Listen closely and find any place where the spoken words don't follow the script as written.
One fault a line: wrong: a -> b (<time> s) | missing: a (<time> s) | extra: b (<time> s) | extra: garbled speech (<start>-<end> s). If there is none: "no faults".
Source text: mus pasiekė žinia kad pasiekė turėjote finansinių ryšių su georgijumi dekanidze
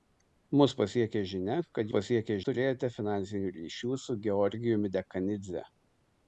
no faults